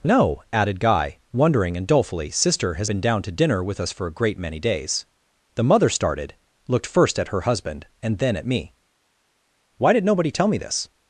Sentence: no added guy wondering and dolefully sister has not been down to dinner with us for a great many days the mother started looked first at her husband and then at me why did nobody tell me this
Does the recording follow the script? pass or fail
fail